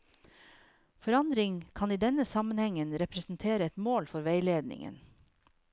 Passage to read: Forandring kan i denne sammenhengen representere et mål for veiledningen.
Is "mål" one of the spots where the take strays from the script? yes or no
no